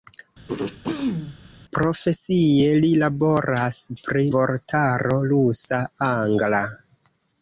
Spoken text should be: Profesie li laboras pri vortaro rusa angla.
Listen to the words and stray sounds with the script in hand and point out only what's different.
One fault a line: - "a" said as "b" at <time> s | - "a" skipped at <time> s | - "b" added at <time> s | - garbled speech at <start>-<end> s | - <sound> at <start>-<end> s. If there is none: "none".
- throat clearing at 0.5-1.4 s